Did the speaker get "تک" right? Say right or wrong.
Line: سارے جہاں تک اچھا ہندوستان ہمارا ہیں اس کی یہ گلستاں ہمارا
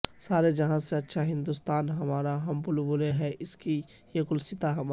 wrong